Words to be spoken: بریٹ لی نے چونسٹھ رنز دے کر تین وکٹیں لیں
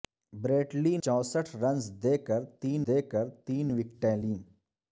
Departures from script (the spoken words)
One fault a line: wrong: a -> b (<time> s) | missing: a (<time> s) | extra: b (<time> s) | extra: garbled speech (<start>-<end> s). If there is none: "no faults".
missing: نے (0.9 s)
extra: دے کر تین (2.9 s)